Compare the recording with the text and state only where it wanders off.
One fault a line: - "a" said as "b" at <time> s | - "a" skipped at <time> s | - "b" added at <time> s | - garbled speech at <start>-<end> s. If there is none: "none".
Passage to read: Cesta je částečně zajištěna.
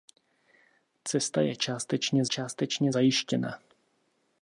- "částečně" added at 2.3 s